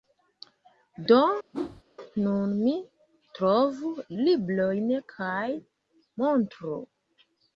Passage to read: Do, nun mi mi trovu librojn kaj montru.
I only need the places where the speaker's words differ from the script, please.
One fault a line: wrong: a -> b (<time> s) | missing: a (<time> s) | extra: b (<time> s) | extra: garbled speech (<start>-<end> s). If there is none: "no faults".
missing: mi (2.7 s)